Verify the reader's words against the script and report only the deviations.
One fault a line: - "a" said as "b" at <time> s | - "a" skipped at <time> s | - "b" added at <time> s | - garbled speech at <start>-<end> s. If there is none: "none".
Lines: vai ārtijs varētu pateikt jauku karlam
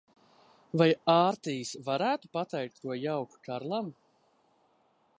- "ko" added at 2.8 s